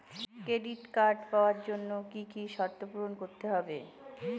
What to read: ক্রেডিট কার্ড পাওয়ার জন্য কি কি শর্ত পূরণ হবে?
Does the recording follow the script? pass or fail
fail